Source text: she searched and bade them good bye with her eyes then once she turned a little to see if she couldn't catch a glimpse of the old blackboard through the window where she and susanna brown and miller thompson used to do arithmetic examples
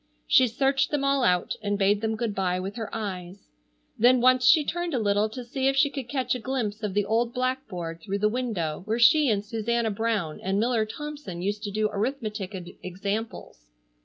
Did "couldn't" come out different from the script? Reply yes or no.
yes